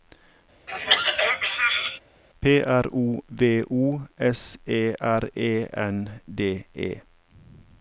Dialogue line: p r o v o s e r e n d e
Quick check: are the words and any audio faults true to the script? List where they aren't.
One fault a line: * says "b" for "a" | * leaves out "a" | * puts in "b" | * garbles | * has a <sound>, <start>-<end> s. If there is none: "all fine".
* has a throat clearing, 0.7-2.0 s